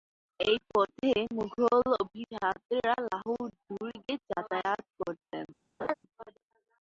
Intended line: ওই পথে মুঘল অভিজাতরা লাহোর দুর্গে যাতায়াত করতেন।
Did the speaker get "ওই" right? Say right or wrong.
wrong